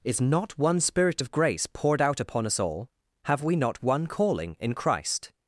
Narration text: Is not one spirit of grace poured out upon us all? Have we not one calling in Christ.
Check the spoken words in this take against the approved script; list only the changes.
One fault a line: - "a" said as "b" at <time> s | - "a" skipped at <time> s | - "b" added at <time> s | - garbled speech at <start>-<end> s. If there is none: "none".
none